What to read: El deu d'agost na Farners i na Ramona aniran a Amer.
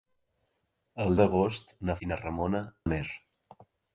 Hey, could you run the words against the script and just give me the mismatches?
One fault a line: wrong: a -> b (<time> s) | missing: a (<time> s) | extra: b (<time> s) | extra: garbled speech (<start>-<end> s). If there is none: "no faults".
missing: deu (1.1 s)
missing: Farners (2.0 s)
missing: aniran (2.6 s)